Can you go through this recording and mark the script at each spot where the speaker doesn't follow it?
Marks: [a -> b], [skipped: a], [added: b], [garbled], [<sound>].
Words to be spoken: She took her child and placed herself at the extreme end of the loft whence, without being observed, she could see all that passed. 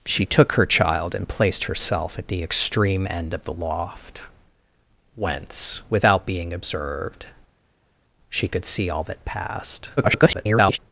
She took her child and placed herself at the extreme end of the loft whence, without being observed, she could see all that passed. [garbled]